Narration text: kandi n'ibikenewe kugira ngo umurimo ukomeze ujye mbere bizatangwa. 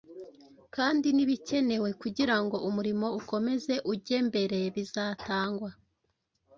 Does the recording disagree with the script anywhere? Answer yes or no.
no